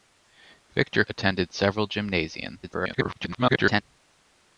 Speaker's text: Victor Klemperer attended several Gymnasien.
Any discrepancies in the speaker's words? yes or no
yes